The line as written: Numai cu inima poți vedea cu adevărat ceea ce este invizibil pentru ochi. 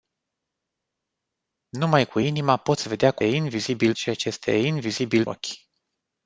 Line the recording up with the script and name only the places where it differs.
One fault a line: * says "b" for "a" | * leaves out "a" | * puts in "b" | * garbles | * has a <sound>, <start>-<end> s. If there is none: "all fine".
* says "invizibil" for "adevărat"
* leaves out "pentru"